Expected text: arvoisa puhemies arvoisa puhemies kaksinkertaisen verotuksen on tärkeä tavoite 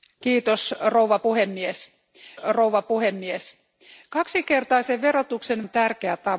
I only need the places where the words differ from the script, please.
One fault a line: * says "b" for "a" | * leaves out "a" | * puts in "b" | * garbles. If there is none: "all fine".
all fine